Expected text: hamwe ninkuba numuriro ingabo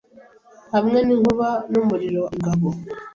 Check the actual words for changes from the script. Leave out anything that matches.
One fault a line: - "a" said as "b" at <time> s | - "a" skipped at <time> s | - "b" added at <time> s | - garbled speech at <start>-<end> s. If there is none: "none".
none